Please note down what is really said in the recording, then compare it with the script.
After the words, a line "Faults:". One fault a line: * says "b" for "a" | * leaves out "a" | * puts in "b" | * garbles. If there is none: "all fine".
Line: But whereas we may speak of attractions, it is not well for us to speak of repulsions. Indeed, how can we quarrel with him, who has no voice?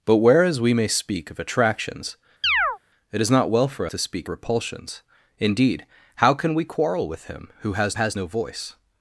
But whereas we may speak of attractions, it is not well for to speak repulsions. Indeed, how can we quarrel with him, who has has no voice?
Faults:
* leaves out "us"
* leaves out "of"
* puts in "has"